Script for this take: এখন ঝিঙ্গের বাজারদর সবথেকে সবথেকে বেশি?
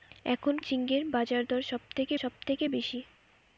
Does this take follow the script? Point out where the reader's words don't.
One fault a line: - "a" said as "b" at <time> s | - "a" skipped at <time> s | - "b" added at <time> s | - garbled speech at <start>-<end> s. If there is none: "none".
none